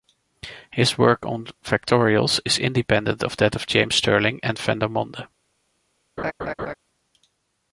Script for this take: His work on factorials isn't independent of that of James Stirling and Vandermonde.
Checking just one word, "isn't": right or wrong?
wrong